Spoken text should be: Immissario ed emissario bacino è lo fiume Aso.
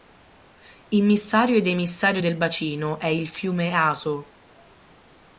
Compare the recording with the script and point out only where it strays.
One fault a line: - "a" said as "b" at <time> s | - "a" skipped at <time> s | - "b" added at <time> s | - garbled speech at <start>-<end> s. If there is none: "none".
- "del" added at 2.2 s
- "lo" said as "il" at 3.1 s